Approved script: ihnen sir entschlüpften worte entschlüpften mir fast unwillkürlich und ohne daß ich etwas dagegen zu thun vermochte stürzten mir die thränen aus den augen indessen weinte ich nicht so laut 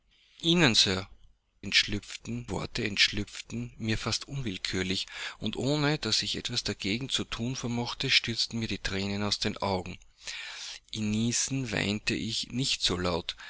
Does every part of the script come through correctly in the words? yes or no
yes